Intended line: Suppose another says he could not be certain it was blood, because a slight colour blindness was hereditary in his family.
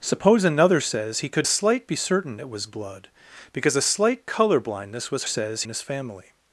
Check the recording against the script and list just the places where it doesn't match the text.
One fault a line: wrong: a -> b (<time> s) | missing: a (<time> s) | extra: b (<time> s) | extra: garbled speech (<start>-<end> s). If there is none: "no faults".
wrong: not -> slight (1.4 s)
wrong: hereditary -> says (5.2 s)